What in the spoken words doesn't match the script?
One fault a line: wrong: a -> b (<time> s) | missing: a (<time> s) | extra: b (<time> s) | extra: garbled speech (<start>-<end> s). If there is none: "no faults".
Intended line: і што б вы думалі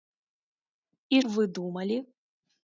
missing: што (1.2 s)